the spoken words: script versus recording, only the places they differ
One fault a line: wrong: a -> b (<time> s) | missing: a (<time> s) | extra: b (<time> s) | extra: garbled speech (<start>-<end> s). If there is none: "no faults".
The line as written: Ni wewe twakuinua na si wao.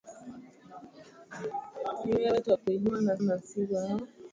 extra: na (3.2 s)